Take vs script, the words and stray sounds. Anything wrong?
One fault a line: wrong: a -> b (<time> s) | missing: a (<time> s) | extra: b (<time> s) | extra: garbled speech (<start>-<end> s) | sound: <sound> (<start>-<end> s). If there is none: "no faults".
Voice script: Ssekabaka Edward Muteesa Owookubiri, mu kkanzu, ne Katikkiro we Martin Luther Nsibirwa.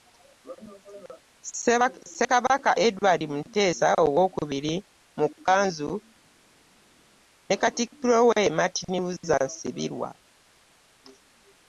no faults